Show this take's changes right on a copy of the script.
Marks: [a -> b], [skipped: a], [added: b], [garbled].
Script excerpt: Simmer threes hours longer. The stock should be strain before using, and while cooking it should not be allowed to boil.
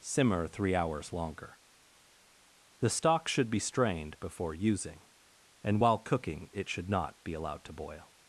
Simmer [threes -> three] hours longer. The stock should be [strain -> strained] before using, and while cooking it should not be allowed to boil.